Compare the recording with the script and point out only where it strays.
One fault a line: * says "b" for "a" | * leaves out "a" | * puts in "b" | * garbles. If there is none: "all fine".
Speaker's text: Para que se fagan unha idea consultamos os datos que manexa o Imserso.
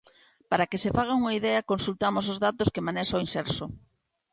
all fine